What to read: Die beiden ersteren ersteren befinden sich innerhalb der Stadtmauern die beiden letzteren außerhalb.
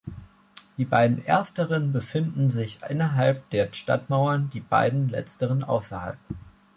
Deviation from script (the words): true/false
true